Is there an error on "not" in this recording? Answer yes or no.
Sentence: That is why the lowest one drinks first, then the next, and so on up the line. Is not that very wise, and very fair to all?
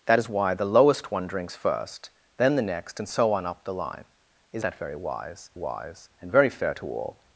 yes